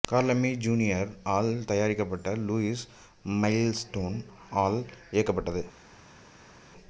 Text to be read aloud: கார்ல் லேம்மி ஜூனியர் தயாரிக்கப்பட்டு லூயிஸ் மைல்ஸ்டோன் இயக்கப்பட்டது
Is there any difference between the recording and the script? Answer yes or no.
yes